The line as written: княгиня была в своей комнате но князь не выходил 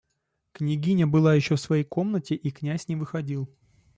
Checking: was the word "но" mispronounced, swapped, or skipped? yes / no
yes